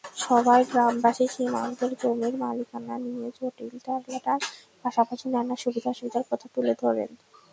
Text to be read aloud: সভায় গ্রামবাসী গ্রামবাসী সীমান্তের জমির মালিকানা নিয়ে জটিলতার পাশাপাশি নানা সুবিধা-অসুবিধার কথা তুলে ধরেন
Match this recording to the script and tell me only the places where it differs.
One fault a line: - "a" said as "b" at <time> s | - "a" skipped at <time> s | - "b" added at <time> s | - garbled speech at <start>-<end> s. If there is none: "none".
- "গ্রামবাসী" skipped at 1.2 s